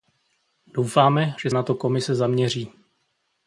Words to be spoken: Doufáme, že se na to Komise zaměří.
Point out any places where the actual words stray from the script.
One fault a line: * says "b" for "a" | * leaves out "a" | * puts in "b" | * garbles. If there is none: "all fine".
* leaves out "se"